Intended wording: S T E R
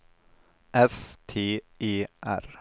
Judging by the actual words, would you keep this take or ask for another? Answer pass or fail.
pass